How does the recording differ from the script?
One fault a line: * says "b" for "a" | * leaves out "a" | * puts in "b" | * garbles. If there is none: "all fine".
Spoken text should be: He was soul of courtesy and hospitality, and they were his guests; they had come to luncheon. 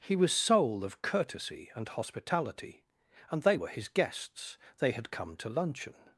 all fine